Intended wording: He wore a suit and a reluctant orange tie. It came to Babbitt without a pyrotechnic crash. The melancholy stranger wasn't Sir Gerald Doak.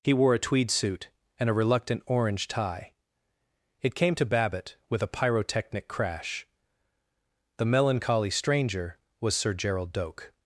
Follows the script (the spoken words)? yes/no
no